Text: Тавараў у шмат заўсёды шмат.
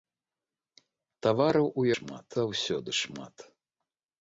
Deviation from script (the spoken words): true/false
false